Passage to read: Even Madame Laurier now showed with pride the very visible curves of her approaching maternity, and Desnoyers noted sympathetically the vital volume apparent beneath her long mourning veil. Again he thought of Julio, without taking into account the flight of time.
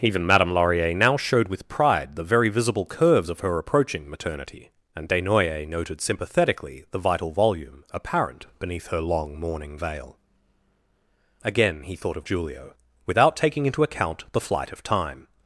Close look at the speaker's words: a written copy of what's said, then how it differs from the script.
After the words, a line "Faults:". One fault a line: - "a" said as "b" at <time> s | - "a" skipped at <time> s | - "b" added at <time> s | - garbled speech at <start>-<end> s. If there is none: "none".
Even Madame Laurier now showed with pride the very visible curves of her approaching maternity, and Desnoyers noted sympathetically the vital volume apparent beneath her long mourning veil. Again he thought of Julio, without taking into account the flight of time.
Faults:
none